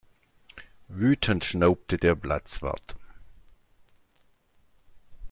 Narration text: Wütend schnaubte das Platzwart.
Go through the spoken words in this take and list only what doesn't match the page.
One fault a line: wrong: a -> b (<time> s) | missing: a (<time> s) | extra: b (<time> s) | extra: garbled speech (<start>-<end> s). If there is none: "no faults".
wrong: das -> der (2.0 s)